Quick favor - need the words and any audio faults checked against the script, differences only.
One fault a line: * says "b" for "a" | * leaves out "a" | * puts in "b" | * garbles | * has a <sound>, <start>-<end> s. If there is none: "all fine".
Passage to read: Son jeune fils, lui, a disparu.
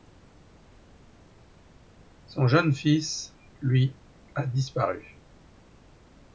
all fine